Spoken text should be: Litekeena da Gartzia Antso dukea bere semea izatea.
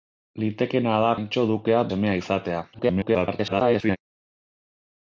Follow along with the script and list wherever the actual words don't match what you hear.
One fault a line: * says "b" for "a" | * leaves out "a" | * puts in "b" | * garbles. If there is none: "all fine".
* leaves out "Gartzia"
* leaves out "bere"
* garbles